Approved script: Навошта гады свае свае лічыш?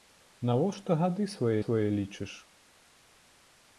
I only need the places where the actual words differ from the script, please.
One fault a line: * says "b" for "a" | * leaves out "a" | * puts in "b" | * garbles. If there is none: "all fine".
all fine